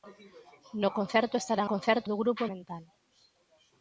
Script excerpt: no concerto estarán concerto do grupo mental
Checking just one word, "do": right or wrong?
right